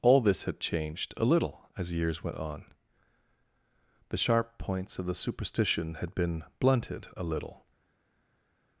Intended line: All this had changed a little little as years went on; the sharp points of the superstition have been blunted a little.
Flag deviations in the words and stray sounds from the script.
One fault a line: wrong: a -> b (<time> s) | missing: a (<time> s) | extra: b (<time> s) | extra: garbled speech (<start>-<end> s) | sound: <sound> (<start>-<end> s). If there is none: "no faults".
missing: little (1.7 s)
wrong: have -> had (5.9 s)